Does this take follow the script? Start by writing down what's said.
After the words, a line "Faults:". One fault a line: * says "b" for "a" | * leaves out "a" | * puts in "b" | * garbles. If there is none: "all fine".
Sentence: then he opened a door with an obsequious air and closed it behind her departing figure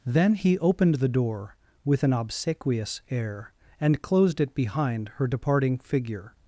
then he opened the door with an obsequious air and closed it behind her departing figure
Faults:
* says "the" for "a"